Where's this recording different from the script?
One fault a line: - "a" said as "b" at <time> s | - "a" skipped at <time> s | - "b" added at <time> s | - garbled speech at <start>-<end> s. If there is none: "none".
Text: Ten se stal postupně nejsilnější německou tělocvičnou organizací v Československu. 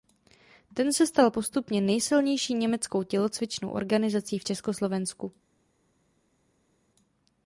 none